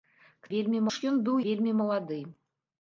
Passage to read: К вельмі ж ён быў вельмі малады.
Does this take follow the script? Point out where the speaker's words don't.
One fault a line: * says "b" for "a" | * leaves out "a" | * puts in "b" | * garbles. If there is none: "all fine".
all fine